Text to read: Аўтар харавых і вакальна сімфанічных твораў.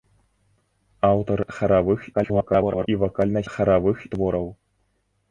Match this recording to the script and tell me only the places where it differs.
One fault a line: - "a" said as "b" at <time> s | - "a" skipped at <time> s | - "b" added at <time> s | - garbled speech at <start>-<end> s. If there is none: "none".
- garbled speech at 2.1-2.9 s
- "сімфанічных" said as "харавых" at 3.5 s